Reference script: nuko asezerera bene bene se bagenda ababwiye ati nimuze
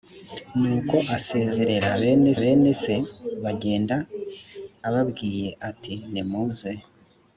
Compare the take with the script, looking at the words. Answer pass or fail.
pass